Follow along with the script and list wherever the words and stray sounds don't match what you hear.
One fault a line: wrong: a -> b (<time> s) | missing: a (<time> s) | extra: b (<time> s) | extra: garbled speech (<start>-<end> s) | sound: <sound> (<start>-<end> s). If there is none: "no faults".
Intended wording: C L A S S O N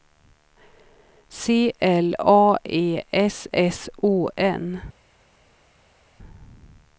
extra: E (2.7 s)